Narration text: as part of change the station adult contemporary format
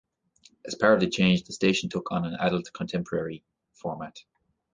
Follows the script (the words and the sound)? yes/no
no